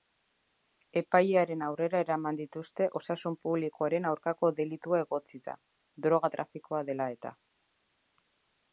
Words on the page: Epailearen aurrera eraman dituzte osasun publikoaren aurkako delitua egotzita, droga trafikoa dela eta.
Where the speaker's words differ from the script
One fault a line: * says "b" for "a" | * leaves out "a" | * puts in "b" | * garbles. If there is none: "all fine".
all fine